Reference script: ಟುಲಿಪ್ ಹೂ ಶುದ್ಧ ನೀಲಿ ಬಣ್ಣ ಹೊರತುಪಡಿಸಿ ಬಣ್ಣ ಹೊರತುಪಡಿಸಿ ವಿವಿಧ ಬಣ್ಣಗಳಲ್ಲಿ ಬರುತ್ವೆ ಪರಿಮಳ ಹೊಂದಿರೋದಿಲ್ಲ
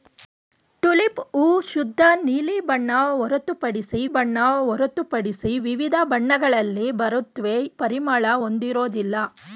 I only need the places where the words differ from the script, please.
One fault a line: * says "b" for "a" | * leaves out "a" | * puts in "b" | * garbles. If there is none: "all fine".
all fine